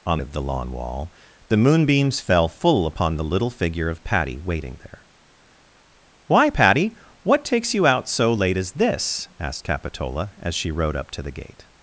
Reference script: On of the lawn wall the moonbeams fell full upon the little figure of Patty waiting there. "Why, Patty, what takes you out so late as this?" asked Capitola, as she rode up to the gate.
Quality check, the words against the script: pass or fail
pass